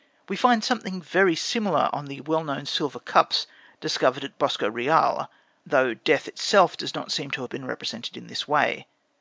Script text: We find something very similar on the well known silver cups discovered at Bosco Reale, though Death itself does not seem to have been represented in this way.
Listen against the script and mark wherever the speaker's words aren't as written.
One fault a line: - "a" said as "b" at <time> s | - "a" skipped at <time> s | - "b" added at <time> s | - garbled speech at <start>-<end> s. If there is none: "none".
none